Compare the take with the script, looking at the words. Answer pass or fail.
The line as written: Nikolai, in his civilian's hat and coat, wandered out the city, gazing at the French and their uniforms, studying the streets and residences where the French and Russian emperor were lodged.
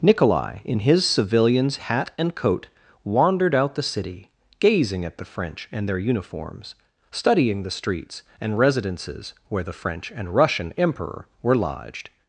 pass